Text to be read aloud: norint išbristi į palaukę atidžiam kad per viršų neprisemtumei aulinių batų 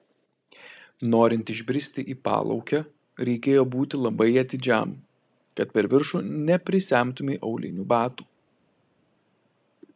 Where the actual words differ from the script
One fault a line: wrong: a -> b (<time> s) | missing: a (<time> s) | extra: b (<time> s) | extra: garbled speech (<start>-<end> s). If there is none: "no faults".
extra: reikėjo būti labai (3.3 s)